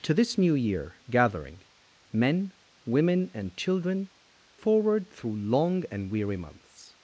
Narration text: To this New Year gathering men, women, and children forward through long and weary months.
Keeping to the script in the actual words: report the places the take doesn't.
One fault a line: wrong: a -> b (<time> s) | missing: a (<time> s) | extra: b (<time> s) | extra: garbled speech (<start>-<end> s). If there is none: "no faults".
no faults